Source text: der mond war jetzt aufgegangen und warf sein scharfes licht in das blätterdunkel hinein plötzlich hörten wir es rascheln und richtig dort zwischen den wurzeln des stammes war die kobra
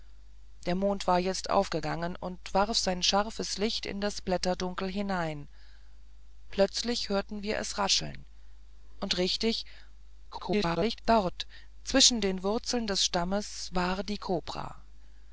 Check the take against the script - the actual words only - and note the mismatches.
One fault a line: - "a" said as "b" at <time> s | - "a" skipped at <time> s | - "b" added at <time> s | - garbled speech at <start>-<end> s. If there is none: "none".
- garbled speech at 10.3-11.0 s